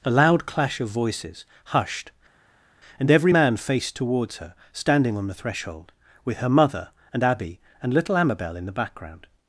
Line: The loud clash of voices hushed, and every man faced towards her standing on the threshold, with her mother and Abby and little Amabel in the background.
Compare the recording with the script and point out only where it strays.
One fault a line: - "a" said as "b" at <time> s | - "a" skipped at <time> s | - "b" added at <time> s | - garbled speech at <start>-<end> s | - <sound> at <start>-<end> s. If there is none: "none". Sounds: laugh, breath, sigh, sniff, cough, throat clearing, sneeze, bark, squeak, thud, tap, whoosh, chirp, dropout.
- "The" said as "A" at 0.0 s